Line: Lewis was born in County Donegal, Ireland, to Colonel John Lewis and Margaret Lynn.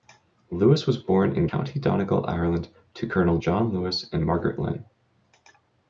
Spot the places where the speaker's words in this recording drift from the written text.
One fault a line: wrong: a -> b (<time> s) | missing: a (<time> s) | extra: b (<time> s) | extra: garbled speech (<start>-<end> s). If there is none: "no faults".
no faults